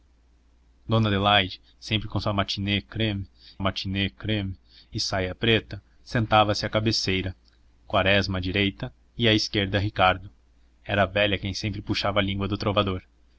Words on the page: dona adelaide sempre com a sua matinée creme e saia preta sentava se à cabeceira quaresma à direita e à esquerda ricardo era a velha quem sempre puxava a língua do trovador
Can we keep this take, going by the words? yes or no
no